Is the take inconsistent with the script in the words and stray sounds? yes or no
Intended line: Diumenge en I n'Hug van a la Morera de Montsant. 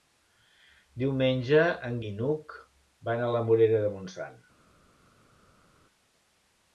no